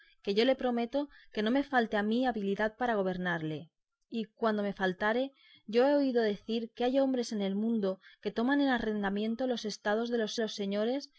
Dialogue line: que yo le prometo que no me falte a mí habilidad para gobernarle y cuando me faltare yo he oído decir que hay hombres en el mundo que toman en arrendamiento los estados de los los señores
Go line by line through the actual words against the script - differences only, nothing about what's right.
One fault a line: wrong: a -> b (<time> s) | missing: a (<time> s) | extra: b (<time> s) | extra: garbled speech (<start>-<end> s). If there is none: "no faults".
no faults